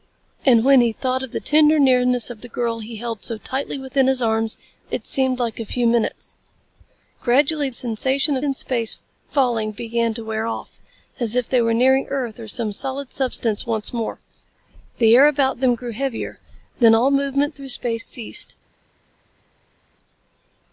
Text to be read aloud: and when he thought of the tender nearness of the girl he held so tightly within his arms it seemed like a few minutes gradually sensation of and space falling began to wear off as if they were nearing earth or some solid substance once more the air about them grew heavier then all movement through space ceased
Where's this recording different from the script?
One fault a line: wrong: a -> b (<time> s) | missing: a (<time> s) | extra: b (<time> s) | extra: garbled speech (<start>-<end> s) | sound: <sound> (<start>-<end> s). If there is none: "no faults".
no faults